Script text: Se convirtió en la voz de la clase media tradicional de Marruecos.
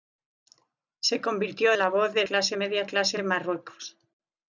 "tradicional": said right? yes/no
no